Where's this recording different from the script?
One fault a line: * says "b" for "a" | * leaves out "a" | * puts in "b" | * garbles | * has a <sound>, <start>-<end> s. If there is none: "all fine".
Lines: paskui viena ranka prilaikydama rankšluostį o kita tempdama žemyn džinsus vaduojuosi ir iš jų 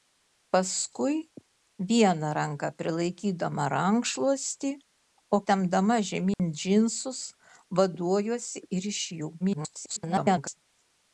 * leaves out "kita"
* has a dropout, 6.3-6.4 s
* garbles